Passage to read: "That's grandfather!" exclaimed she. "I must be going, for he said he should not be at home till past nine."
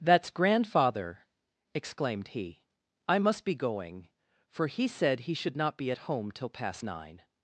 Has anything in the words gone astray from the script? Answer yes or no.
yes